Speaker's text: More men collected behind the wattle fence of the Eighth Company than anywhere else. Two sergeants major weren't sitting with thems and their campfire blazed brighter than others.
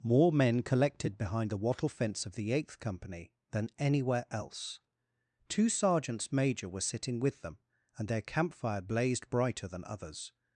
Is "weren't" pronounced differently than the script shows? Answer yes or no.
yes